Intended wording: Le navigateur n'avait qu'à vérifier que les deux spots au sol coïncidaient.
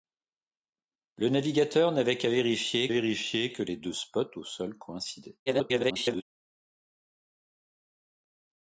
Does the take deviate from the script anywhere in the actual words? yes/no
yes